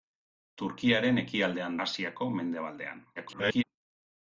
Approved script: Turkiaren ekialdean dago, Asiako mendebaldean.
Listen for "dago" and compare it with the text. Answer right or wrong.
wrong